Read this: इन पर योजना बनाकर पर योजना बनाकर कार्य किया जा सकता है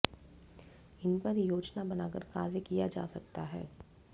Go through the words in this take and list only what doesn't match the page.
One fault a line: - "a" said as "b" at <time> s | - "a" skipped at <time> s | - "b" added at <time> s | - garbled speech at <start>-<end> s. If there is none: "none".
- "पर योजना बनाकर" skipped at 2.2 s